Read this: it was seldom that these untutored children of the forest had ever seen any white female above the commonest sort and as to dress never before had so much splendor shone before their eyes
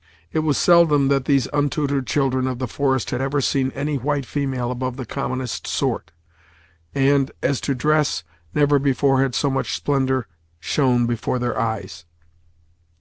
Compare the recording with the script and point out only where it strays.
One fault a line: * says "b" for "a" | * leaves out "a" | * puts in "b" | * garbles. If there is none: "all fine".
all fine